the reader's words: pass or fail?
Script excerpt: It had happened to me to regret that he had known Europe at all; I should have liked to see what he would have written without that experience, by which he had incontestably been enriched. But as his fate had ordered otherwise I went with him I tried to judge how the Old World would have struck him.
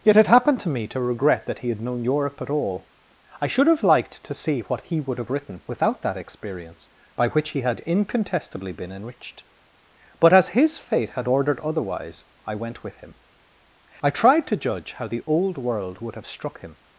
fail